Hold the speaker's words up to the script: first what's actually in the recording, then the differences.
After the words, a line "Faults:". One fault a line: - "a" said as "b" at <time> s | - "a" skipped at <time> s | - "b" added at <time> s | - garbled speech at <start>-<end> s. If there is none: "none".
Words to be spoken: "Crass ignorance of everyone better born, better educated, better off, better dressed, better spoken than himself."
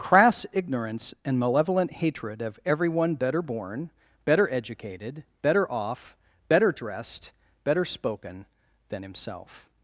"Crass ignorance and malevolent hatred of everyone better born, better educated, better off, better dressed, better spoken than himself."
Faults:
- "and malevolent hatred" added at 1.2 s